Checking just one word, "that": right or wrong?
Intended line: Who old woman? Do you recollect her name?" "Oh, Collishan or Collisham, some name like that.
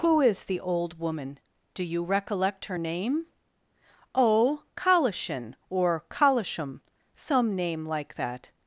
right